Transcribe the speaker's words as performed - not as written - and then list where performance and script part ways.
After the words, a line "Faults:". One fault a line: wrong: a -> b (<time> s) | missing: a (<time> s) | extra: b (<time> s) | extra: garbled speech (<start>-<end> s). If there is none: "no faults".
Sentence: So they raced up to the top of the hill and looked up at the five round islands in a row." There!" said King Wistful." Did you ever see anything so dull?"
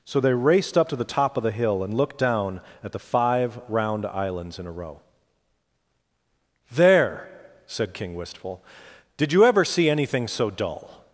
So they raced up to the top of the hill and looked down at the five round islands in a row." There!" said King Wistful." Did you ever see anything so dull?"
Faults:
wrong: up -> down (2.2 s)